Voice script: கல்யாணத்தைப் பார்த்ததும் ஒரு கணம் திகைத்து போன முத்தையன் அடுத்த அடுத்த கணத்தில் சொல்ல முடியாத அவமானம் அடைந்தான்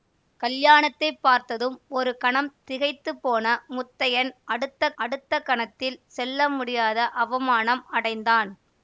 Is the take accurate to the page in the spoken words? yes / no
yes